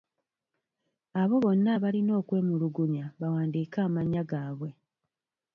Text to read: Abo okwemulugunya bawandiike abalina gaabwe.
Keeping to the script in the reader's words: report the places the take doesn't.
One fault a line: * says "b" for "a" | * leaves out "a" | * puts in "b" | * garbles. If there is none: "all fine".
* puts in "bonna abalina"
* says "amannya" for "abalina"